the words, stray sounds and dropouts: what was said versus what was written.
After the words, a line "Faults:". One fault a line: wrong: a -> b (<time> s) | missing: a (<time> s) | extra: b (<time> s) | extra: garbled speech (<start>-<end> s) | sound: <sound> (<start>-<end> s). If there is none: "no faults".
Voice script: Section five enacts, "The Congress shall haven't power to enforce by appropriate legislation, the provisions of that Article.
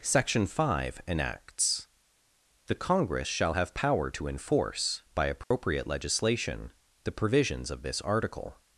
Section five enacts, "The Congress shall have power to enforce by appropriate legislation, the provisions of this Article.
Faults:
wrong: haven't -> have (3.5 s)
sound: dropout (5.4-5.5 s)
wrong: that -> this (7.8 s)